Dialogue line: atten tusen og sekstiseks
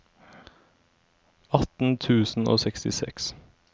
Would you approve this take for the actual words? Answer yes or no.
yes